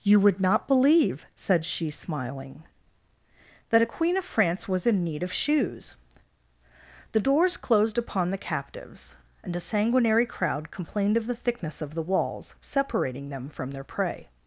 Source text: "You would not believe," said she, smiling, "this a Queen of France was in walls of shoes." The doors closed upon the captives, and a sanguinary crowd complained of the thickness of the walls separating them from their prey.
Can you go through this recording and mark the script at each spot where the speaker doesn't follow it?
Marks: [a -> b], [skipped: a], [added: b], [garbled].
"You would not believe," said she, smiling, ["this -> that] a Queen of France was in [walls -> need] of shoes." The doors closed upon the captives, and a sanguinary crowd complained of the thickness of the walls separating them from their prey.